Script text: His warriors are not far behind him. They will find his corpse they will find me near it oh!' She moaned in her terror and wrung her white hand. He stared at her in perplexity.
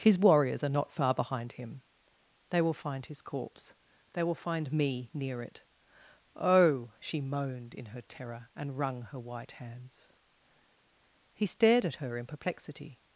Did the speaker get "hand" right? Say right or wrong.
wrong